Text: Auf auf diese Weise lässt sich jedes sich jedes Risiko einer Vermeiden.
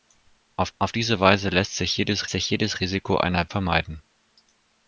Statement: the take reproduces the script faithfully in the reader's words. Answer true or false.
true